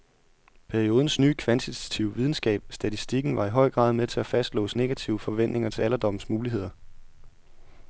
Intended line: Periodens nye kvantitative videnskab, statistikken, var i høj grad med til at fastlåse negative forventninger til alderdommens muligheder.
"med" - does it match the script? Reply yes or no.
yes